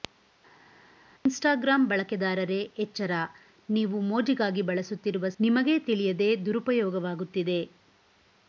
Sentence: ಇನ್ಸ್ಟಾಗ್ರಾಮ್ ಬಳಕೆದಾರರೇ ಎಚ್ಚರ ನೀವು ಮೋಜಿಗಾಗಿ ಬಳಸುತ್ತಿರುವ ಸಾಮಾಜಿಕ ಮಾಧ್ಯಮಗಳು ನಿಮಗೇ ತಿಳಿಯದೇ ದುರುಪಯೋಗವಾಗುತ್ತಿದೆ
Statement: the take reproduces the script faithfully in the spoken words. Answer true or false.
false